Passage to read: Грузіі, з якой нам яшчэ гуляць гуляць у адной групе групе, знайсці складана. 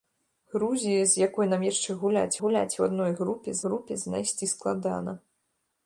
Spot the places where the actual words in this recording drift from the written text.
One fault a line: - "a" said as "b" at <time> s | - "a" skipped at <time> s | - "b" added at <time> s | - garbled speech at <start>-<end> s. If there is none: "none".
none